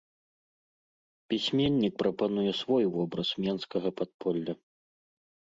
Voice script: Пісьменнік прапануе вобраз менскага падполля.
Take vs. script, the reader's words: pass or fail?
fail